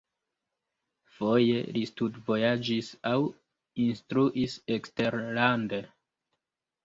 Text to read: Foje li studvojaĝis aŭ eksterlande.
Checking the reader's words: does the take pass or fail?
fail